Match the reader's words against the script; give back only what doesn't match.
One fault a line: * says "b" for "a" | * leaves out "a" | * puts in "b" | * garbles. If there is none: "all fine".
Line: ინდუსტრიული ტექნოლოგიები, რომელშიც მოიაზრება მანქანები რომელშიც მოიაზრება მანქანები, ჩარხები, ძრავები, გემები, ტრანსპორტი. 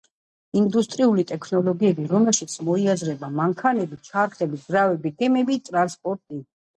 * leaves out "რომელშიც მოიაზრება მანქანები"